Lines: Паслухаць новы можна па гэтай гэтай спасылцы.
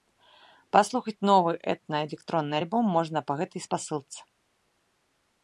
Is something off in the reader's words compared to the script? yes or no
yes